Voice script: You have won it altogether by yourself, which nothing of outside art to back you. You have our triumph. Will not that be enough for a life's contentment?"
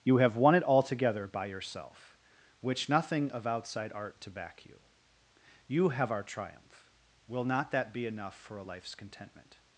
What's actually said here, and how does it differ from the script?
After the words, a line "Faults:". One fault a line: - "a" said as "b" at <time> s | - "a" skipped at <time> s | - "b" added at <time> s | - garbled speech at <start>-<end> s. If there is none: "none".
You have won it altogether by yourself, which nothing of outside art to back you. You have our triumph. Will not that be enough for a life's contentment?"
Faults:
none